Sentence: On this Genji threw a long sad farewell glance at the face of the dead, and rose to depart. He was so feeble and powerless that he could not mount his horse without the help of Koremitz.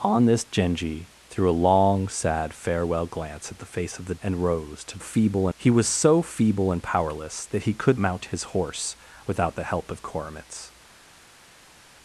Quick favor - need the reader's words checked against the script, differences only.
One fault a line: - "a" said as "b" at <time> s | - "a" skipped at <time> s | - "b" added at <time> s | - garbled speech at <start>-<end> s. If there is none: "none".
- "dead" skipped at 4.2 s
- "depart" said as "feeble" at 5.0 s
- "not" skipped at 8.0 s